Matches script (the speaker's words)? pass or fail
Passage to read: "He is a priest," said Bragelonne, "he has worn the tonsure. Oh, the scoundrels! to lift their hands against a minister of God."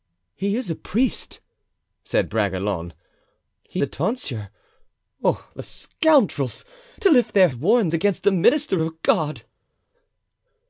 fail